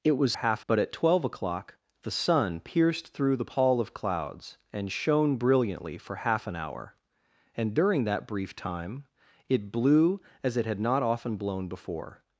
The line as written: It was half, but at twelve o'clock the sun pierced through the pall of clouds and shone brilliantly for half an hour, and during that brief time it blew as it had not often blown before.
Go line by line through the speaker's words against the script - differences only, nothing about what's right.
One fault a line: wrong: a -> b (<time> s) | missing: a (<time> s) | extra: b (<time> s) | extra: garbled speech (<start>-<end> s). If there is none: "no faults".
no faults